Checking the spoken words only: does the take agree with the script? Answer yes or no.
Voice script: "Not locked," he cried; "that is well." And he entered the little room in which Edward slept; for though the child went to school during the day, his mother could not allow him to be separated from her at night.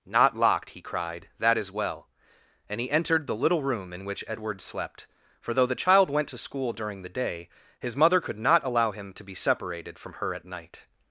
yes